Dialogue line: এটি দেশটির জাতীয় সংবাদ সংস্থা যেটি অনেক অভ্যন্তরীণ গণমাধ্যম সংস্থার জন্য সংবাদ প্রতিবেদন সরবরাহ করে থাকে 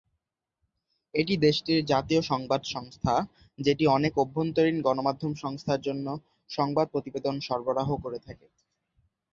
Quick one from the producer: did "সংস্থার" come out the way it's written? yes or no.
yes